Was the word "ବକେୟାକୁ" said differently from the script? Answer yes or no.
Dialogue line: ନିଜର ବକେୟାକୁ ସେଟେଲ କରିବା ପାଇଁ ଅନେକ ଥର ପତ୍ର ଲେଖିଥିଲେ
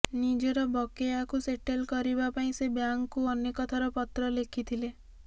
no